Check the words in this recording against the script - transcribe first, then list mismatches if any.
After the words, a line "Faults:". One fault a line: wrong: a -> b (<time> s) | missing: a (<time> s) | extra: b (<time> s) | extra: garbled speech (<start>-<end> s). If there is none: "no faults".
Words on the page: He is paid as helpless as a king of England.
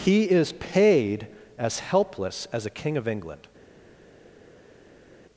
He is paid as helpless as a king of England.
Faults:
no faults